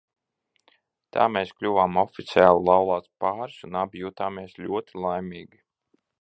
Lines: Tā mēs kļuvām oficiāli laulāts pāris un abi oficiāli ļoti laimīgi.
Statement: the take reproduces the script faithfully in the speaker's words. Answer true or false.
false